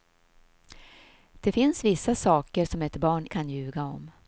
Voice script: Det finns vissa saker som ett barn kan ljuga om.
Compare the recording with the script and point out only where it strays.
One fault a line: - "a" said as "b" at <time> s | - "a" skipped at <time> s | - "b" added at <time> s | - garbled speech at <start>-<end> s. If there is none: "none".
none